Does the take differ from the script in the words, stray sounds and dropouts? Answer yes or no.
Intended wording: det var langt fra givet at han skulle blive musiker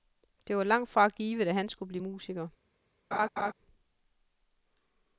yes